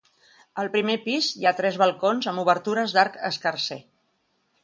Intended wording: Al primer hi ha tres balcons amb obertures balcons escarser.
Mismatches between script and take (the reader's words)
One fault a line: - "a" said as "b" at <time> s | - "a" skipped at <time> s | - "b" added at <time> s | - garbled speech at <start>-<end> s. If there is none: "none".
- "pis" added at 1.1 s
- "balcons" said as "d'arc" at 3.0 s